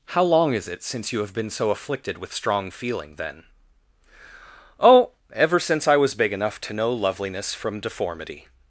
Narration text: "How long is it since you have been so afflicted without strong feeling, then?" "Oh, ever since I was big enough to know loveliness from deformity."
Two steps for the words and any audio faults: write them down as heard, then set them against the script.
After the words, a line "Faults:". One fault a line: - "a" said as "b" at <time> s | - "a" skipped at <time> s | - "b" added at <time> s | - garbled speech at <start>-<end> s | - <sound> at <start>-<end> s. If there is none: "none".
"How long is it since you have been so afflicted with strong feeling, then?" "Oh, ever since I was big enough to know loveliness from deformity."
Faults:
- "without" said as "with" at 2.2 s